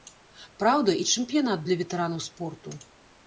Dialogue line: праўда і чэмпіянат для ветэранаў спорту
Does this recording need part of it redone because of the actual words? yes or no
no